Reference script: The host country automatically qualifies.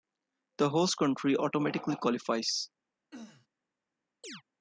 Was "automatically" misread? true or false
false